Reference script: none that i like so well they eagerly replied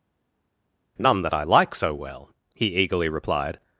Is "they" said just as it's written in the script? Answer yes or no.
no